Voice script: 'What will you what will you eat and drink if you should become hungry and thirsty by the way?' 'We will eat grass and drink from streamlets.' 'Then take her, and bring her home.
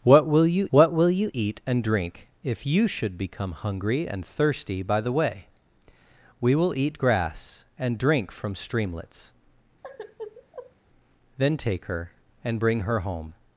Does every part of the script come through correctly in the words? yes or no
yes